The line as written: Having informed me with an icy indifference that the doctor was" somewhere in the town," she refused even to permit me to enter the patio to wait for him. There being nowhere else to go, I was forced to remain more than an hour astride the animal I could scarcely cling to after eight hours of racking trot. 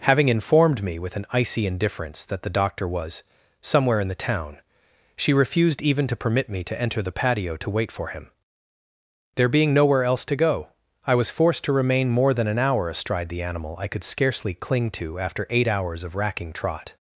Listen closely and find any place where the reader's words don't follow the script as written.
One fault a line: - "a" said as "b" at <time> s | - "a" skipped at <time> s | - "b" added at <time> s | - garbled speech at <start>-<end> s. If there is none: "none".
none